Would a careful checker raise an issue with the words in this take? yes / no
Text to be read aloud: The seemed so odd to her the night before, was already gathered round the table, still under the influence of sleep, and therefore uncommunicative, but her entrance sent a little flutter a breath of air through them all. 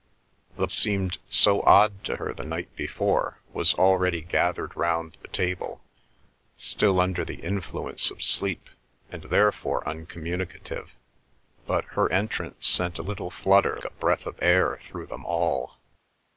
no